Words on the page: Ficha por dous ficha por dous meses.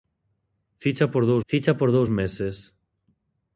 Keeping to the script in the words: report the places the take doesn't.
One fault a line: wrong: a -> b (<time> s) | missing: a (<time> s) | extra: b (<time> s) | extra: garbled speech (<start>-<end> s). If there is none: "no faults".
no faults